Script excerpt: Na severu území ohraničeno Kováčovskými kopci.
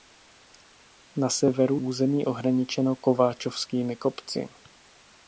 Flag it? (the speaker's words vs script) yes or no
no